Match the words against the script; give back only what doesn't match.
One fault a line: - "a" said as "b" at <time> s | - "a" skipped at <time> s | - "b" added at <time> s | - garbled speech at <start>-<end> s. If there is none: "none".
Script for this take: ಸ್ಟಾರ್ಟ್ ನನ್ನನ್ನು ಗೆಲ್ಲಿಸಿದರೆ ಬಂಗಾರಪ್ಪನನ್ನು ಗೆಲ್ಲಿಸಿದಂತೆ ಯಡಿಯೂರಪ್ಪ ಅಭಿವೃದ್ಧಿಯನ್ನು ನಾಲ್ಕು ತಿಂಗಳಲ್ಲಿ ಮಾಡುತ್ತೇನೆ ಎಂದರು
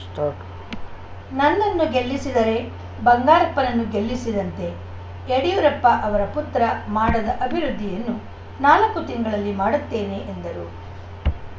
- "ಅವರ ಪುತ್ರ ಮಾಡದ" added at 6.0 s